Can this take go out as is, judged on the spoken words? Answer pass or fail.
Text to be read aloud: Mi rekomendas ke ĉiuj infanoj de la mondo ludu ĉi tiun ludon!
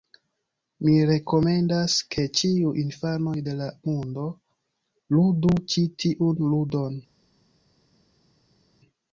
pass